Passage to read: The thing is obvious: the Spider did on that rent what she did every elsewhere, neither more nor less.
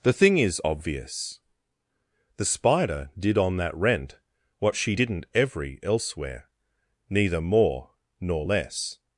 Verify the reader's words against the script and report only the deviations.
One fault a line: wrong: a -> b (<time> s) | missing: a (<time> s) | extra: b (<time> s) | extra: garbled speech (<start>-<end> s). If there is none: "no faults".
wrong: did -> didn't (4.9 s)